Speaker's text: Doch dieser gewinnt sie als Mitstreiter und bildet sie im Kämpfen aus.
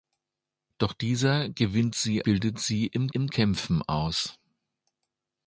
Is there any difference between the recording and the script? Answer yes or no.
yes